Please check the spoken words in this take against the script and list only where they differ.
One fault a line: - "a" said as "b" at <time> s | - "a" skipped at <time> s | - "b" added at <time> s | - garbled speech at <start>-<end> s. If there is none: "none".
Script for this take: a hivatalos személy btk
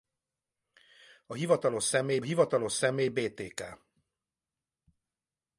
- "hivatalos személy" added at 2.2 s